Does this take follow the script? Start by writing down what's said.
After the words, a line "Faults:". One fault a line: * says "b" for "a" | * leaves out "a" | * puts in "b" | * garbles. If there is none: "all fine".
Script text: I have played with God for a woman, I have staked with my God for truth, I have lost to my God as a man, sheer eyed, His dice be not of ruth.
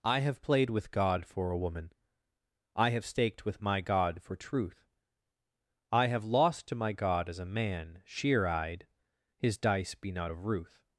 I have played with God for a woman, I have staked with my God for truth, I have lost to my God as a man, sheer eyed, His dice be not of ruth.
Faults:
all fine